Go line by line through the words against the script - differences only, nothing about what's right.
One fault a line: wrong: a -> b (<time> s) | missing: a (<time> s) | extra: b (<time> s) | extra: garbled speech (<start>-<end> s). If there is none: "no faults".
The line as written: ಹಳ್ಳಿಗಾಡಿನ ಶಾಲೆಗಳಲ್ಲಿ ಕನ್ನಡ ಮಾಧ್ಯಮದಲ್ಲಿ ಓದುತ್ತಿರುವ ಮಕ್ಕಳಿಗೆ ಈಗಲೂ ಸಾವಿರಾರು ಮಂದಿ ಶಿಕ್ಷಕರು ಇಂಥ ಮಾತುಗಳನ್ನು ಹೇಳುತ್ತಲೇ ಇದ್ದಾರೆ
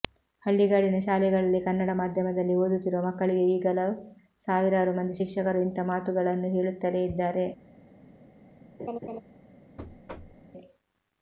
no faults